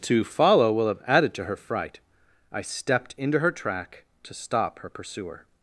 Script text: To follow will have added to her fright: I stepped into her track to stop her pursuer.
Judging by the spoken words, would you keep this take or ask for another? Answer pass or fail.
pass